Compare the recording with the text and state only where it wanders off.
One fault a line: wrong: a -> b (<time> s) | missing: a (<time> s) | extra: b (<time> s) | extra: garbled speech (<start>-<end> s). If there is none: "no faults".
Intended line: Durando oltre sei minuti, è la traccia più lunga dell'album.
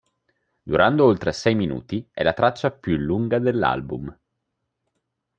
no faults